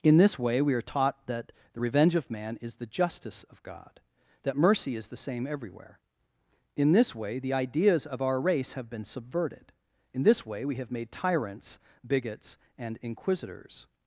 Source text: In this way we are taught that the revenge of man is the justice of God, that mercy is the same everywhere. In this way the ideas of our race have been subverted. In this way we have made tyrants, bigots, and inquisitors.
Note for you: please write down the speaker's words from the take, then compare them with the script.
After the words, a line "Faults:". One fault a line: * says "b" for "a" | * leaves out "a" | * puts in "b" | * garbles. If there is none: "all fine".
In this way we are taught that the revenge of man is the justice of God, that mercy is the same everywhere. In this way the ideas of our race have been subverted. In this way we have made tyrants, bigots, and inquisitors.
Faults:
all fine